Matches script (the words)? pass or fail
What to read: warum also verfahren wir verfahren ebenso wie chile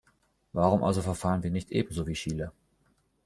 fail